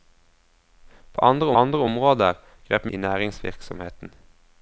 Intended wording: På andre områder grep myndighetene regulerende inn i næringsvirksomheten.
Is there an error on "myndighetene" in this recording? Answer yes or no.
yes